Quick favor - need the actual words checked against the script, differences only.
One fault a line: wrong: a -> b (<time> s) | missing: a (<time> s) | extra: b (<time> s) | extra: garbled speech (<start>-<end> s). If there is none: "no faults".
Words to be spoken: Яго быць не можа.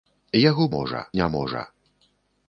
wrong: быць -> можа (0.8 s)